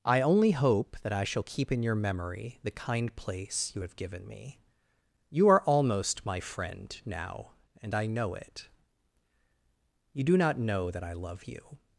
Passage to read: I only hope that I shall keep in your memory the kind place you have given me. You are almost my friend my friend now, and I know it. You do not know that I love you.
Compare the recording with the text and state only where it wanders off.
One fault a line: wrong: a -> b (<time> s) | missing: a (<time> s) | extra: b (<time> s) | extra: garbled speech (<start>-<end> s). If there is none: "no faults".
missing: my friend (7.0 s)